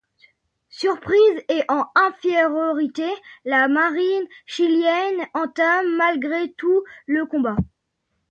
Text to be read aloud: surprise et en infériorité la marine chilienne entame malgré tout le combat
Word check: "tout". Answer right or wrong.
right